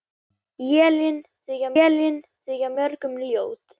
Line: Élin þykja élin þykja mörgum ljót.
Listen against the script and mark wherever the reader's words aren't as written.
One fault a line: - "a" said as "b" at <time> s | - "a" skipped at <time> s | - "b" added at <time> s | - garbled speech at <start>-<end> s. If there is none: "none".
none